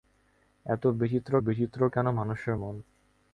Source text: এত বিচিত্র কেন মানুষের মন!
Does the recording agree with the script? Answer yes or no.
no